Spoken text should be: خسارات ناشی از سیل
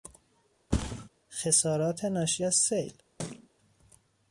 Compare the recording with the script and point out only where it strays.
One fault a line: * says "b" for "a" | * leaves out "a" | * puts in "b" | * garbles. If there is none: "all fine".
all fine